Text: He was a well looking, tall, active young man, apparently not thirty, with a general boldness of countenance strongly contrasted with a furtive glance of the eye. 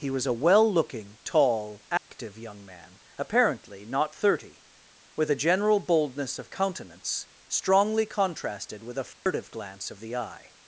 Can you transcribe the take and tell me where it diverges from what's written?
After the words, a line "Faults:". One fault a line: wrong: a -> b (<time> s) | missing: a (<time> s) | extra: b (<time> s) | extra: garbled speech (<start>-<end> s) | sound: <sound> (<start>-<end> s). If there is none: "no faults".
He was a well looking, tall, active young man, apparently not thirty, with a general boldness of countenance strongly contrasted with a furtive glance of the eye.
Faults:
sound: dropout (2.0-2.1 s)
sound: dropout (9.1-9.3 s)